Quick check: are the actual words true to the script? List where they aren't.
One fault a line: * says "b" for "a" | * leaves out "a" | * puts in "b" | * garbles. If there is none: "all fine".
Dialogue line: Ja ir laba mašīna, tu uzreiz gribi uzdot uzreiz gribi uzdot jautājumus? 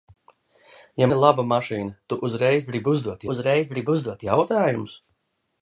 all fine